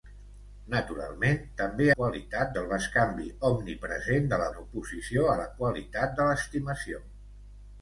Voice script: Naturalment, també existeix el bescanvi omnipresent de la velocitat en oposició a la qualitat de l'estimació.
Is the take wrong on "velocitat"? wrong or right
wrong